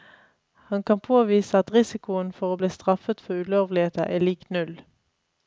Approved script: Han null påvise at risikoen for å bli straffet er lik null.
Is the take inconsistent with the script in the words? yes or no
yes